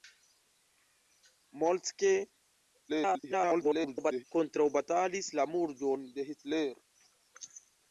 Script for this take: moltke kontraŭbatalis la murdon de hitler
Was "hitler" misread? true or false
false